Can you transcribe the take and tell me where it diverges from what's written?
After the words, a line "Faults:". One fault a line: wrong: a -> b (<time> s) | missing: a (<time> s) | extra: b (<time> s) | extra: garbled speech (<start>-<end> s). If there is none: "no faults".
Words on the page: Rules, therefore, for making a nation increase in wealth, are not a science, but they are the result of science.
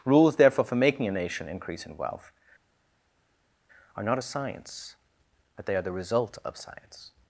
Rules, therefore, for making a nation increase in wealth, are not a science, but they are the result of science.
Faults:
no faults